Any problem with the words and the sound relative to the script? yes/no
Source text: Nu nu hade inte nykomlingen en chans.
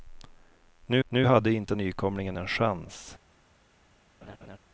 yes